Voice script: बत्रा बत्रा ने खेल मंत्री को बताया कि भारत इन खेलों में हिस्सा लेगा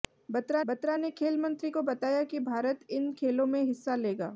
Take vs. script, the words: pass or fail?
pass